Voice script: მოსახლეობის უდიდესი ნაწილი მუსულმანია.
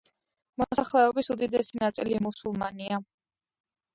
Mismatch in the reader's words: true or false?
false